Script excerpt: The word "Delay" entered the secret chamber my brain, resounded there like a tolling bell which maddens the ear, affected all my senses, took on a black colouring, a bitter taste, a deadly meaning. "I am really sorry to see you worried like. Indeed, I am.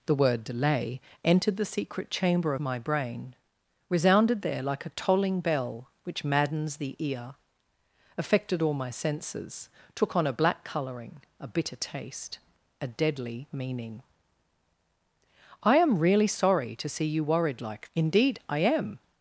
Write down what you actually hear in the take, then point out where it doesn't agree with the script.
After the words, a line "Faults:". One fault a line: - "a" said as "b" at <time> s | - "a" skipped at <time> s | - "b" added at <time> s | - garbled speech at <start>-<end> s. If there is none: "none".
The word "Delay" entered the secret chamber my brain, resounded there like a tolling bell which maddens the ear, affected all my senses, took on a black colouring, a bitter taste, a deadly meaning. "I am really sorry to see you worried like. Indeed, I am.
Faults:
none